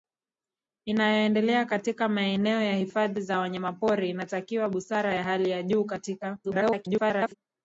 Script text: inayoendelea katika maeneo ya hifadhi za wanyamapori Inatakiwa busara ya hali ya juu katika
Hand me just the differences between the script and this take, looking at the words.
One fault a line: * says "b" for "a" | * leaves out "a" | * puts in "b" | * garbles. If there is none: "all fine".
* garbles